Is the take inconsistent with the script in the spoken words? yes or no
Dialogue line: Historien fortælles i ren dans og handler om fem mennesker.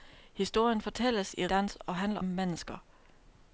yes